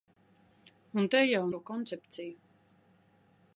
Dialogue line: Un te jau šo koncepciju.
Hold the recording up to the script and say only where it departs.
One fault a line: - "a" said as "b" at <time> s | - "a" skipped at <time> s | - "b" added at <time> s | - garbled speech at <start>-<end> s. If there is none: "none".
none